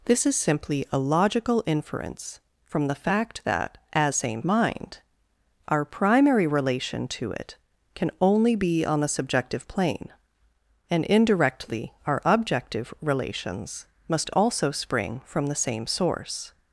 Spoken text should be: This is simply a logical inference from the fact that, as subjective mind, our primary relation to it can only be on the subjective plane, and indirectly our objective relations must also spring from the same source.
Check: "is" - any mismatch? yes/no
no